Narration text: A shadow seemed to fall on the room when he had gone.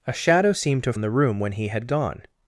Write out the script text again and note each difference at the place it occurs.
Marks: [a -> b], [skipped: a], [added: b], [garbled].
A shadow seemed to [skipped: fall] on the room when he had gone.